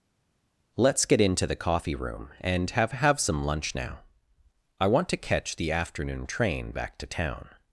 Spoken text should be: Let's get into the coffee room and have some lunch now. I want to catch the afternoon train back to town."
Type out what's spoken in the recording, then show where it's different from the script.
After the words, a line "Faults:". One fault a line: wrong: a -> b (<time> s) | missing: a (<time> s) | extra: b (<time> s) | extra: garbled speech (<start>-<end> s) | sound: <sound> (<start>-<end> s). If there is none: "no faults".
Let's get into the coffee room and have have some lunch now. I want to catch the afternoon train back to town."
Faults:
extra: have (2.9 s)